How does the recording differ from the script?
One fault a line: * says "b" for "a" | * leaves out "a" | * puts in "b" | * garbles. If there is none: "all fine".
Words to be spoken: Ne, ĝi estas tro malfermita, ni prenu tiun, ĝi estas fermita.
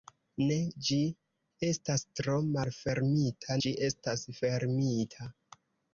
* leaves out "ni prenu tiun"